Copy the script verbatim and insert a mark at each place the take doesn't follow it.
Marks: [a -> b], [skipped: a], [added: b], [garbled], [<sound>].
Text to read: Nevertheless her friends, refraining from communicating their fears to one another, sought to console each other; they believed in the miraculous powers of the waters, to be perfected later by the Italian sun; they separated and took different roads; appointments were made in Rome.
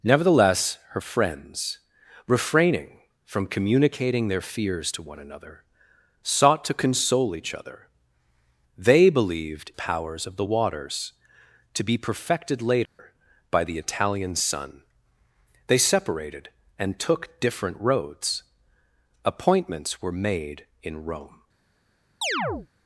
Nevertheless her friends, refraining from communicating their fears to one another, sought to console each other; they believed [skipped: in the miraculous] powers of the waters, to be perfected later [dropout] by the Italian sun; they separated and took different roads; appointments were made in Rome. [chirp]